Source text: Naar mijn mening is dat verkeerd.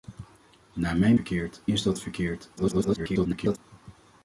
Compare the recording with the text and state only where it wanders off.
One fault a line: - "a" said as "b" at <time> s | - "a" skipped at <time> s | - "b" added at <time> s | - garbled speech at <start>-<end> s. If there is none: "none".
- "mening" said as "verkeerd" at 1.1 s
- garbled speech at 2.6-3.6 s